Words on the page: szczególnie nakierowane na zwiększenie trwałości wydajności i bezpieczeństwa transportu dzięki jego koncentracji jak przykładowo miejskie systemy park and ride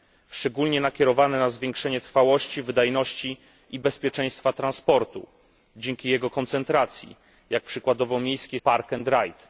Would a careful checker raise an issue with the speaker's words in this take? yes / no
yes